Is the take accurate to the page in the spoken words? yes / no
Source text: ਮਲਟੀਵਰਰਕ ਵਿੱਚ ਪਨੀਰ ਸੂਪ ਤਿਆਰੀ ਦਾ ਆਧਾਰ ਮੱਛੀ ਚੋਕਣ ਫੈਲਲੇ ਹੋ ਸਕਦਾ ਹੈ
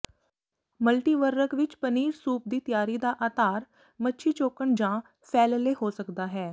no